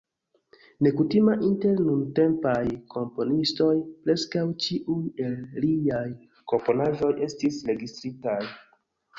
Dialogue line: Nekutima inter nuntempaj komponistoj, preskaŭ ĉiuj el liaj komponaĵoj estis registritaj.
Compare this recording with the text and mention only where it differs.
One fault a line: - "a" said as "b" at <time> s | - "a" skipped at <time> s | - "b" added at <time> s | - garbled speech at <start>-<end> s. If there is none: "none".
none